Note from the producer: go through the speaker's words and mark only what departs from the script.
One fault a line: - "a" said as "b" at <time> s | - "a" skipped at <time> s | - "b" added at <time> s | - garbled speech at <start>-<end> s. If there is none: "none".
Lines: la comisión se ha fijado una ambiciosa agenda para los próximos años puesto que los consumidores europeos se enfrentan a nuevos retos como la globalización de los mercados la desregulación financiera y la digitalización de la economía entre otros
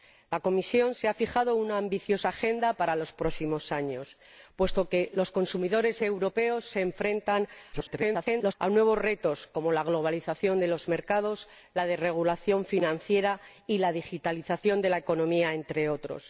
- garbled speech at 7.7-8.5 s